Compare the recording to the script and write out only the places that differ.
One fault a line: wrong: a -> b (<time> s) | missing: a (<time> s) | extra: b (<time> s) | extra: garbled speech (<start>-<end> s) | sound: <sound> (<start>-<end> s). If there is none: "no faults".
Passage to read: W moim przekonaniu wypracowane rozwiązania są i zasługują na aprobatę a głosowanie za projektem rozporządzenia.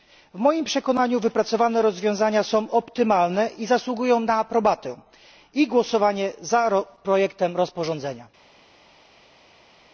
extra: optymalne (2.7 s)
wrong: a -> i (5.5 s)